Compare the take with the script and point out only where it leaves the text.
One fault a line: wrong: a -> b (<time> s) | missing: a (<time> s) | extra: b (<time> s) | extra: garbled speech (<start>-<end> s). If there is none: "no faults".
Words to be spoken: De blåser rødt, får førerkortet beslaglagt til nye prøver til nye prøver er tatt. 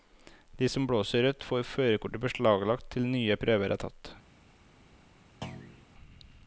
extra: som (0.7 s)
missing: til nye prøver (3.7 s)